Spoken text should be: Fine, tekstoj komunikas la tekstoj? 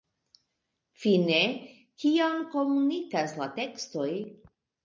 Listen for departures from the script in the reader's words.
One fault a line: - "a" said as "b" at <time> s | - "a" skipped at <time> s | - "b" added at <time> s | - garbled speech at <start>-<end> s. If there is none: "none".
- "tekstoj" said as "kion" at 2.0 s